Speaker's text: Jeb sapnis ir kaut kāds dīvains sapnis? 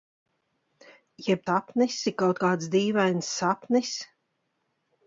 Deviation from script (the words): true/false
false